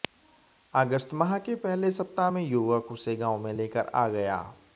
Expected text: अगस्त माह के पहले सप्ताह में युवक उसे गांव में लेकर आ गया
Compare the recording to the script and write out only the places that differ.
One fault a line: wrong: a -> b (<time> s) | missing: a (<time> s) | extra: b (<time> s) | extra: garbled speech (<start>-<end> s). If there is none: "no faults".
no faults